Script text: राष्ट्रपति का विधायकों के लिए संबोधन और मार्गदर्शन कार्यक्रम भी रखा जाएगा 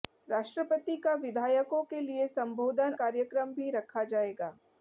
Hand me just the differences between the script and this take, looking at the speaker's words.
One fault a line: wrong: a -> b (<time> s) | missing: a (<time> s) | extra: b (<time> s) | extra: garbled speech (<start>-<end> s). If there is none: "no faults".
missing: और मार्गदर्शन (2.9 s)